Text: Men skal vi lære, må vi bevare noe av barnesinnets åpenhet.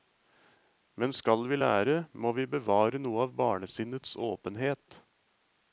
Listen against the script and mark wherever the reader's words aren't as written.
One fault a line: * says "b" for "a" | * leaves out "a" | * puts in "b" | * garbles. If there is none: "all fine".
all fine